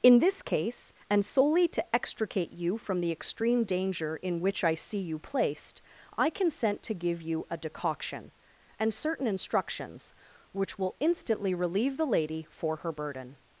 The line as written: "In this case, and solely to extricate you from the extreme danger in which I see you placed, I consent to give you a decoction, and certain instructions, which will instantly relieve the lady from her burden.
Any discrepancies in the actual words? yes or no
yes